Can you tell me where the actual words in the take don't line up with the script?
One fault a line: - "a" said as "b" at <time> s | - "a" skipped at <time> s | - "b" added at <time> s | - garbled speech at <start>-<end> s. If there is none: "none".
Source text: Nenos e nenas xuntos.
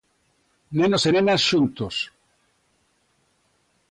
none